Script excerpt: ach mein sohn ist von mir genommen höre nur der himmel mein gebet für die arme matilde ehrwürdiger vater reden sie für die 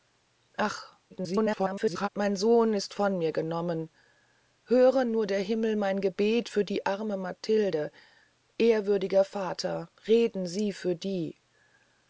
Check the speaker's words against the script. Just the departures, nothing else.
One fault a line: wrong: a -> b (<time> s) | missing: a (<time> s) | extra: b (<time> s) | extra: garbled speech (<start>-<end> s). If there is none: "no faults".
extra: garbled speech (1.1-2.1 s)